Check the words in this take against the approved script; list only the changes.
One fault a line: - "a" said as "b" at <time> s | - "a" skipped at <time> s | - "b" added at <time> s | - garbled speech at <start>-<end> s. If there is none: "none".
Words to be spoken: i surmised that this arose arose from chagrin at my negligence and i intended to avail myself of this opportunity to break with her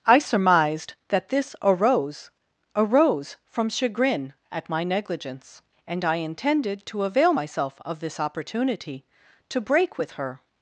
none